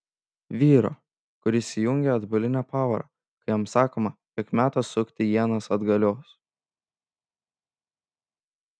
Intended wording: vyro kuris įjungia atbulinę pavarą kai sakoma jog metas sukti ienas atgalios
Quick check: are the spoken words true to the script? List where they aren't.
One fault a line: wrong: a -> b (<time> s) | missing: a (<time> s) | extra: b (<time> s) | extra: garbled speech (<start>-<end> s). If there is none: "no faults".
extra: jam (3.5 s)